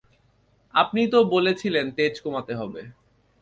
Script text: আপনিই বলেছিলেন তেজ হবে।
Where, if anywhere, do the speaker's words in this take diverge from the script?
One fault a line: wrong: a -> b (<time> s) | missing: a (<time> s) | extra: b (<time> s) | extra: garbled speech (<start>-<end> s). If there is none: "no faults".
extra: তো (1.1 s)
extra: কমাতে (2.2 s)